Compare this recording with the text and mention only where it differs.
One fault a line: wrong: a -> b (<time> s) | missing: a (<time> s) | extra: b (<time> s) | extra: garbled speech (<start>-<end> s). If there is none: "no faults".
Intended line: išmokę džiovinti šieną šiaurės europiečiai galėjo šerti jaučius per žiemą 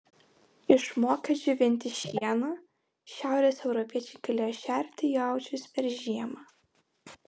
no faults